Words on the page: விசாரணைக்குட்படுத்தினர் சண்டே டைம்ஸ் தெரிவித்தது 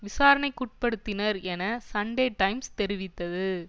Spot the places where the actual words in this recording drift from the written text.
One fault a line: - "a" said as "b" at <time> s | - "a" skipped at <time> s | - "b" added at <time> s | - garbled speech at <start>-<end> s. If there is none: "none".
- "என" added at 1.4 s